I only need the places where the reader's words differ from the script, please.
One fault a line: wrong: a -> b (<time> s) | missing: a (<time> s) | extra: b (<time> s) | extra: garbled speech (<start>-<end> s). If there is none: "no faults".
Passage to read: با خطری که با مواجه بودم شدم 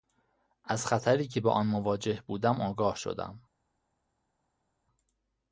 wrong: با -> از (0.6 s)
extra: آن (1.5 s)
extra: آگاه (2.6 s)